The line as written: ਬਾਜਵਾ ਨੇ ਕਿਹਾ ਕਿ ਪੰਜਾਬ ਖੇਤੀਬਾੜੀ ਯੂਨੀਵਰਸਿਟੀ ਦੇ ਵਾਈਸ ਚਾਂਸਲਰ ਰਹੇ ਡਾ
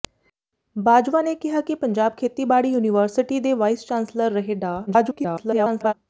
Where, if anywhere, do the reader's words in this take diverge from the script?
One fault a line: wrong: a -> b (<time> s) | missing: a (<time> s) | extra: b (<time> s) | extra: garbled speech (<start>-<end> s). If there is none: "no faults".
extra: garbled speech (4.9-5.9 s)